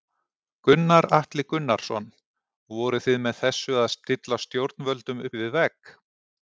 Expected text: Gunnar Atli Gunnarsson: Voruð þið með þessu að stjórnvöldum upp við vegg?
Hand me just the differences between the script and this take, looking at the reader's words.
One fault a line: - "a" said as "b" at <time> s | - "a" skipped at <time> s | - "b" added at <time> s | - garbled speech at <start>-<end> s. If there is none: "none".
- "stilla" added at 4.0 s